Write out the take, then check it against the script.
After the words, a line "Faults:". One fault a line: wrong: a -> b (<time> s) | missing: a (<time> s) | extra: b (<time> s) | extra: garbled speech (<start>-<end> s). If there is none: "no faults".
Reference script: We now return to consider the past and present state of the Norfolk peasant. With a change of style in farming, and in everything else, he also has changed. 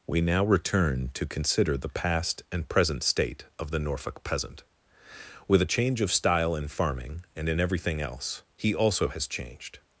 We now return to consider the past and present state of the Norfolk peasant. With a change of style in farming, and in everything else, he also has changed.
Faults:
no faults